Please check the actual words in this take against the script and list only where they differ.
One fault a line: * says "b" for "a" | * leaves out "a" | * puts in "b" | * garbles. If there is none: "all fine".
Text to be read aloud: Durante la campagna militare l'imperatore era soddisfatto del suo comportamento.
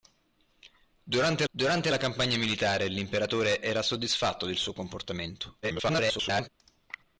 * puts in "durante"
* garbles